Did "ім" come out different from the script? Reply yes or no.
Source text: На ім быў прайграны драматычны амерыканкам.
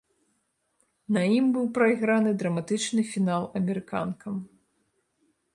no